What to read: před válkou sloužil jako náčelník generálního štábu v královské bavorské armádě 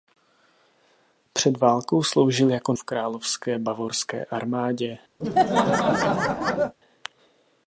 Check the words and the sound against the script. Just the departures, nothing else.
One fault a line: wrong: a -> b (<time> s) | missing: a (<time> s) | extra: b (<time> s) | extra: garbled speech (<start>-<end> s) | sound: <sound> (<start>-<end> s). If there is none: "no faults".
missing: náčelník generálního štábu (2.7 s)
sound: laugh (5.2-6.8 s)